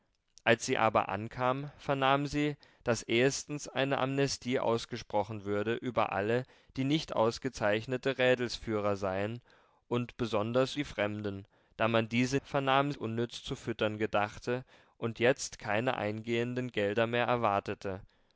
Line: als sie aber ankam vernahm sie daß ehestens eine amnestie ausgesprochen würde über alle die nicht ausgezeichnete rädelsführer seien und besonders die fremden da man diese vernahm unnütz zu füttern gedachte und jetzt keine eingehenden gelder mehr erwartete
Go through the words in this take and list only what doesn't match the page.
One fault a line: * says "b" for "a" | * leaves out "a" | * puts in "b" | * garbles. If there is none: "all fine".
all fine